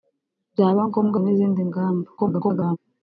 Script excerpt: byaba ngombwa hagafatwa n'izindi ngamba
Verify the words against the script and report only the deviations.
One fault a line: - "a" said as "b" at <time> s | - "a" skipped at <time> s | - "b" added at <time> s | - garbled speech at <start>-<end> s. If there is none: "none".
- "hagafatwa" skipped at 1.2 s
- garbled speech at 2.2-2.8 s